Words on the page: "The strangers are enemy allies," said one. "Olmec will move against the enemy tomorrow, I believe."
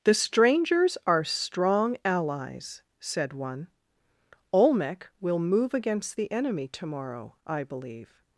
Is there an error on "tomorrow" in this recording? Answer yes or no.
no